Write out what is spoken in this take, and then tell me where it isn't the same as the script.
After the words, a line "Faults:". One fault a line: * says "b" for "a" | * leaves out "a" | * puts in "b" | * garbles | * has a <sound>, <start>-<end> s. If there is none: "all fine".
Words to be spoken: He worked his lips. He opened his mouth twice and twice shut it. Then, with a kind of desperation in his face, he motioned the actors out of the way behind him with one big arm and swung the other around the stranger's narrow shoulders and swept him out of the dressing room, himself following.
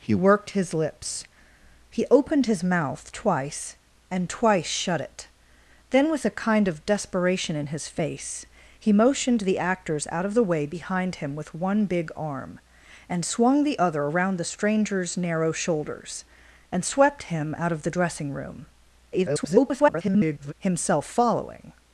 He worked his lips. He opened his mouth twice and twice shut it. Then, with a kind of desperation in his face, he motioned the actors out of the way behind him with one big arm and swung the other around the stranger's narrow shoulders and swept him out of the dressing room, [garbled] himself following.
Faults:
* garbles